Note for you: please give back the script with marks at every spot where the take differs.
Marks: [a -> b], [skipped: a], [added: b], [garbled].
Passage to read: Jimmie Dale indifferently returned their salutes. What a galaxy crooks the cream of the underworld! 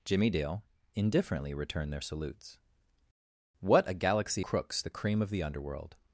Jimmie Dale indifferently returned their salutes. What a galaxy crooks the cream of the underworld!